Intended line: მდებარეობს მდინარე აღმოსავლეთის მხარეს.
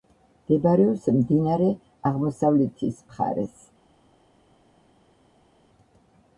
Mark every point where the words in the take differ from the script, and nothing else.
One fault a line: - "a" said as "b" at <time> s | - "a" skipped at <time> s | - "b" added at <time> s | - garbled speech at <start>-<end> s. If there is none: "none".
none